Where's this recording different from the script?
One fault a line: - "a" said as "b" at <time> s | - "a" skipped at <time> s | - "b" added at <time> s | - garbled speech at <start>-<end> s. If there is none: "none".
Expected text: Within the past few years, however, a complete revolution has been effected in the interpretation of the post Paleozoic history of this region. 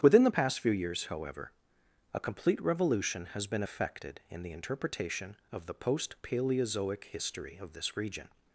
none